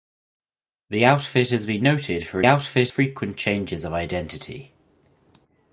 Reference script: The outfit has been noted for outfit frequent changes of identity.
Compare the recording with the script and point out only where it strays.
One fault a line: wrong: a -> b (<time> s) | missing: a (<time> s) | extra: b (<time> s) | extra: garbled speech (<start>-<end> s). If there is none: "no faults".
no faults